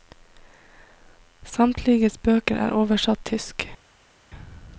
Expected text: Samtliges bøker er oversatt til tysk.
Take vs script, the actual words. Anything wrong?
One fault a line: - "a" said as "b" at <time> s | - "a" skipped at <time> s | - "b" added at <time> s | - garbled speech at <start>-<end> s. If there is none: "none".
- "til" skipped at 3.2 s